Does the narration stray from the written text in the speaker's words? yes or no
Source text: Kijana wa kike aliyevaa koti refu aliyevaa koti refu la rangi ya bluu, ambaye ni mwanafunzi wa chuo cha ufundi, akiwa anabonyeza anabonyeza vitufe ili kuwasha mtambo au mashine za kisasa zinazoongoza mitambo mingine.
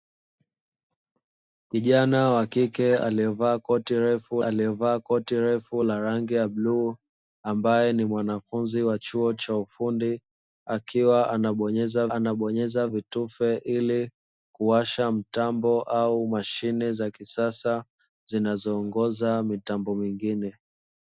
no